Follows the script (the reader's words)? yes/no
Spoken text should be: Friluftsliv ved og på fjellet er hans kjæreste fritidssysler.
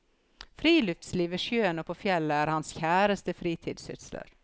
no